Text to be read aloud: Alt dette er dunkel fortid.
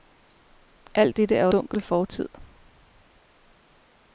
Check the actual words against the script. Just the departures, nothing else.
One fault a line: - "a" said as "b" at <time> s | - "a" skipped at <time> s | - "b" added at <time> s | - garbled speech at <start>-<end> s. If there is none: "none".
none